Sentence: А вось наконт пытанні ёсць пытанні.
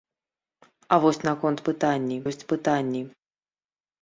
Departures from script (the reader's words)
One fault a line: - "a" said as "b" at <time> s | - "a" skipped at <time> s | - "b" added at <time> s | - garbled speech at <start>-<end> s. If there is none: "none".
none